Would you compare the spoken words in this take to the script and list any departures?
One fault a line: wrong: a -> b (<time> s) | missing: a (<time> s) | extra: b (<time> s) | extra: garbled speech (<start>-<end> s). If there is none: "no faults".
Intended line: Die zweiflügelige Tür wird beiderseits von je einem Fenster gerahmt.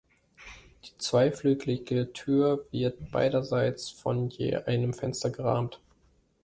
no faults